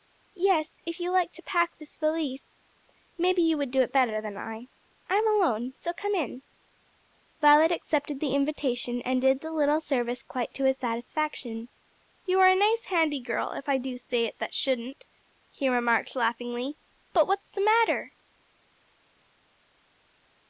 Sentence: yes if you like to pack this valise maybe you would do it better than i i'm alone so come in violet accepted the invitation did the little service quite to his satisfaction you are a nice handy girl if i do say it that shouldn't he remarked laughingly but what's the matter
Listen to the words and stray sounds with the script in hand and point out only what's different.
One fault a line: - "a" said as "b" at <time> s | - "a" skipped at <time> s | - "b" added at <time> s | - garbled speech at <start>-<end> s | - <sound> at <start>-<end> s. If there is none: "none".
- "and" added at 9.0 s